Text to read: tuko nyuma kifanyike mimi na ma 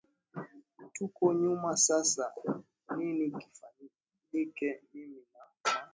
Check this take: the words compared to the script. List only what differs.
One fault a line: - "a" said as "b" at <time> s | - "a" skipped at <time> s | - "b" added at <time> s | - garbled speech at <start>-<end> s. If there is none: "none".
- "sasa nini" added at 1.8 s